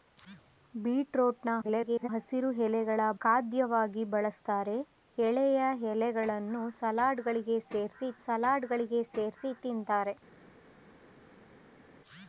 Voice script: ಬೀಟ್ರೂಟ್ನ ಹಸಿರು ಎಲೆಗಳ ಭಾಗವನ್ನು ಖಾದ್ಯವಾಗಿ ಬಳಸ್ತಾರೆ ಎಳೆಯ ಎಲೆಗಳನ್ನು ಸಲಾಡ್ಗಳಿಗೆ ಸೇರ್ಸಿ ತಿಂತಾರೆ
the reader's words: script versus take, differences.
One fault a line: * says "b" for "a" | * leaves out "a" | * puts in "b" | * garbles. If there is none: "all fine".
* garbles
* leaves out "ಭಾಗವನ್ನು"
* puts in "ಸಲಾಡ್ಗಳಿಗೆ ಸೇರ್ಸಿ"